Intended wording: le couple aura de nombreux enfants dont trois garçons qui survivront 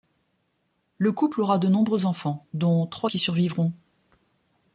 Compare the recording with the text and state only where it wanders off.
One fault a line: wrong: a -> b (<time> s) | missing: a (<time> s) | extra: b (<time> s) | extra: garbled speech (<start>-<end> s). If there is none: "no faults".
missing: garçons (3.1 s)